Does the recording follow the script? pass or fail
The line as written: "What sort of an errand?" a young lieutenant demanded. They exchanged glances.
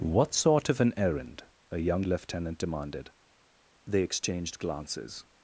pass